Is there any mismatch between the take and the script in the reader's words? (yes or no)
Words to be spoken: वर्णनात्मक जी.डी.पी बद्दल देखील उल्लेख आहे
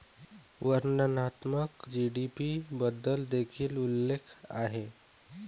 no